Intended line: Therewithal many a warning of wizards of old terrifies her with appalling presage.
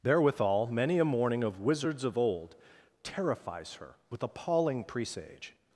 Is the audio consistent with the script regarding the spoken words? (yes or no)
no